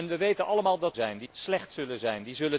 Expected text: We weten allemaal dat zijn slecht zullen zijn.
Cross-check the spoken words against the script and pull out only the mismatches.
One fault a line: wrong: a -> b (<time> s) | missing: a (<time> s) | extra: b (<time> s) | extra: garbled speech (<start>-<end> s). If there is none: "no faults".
no faults